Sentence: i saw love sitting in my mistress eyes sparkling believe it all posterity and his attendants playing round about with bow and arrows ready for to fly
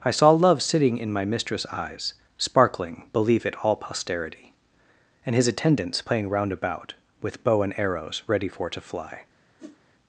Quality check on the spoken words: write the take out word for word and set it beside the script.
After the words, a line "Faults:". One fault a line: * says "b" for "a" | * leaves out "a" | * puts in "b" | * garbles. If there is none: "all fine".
i saw love sitting in my mistress eyes sparkling believe it all posterity and his attendants playing round about with bow and arrows ready for to fly
Faults:
all fine